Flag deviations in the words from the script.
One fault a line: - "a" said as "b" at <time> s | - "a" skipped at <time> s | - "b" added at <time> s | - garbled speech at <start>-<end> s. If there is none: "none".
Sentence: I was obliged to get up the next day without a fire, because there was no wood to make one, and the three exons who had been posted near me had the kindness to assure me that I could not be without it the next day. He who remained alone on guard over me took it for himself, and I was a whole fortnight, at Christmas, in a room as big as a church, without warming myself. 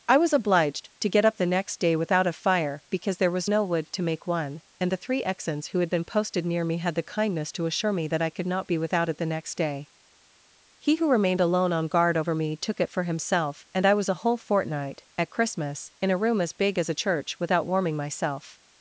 none